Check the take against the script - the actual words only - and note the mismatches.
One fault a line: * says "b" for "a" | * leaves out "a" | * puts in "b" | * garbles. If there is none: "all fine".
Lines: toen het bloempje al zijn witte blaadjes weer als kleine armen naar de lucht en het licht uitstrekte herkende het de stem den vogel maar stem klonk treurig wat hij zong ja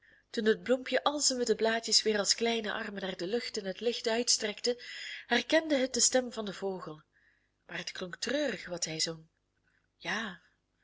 * puts in "van"
* says "het" for "stem"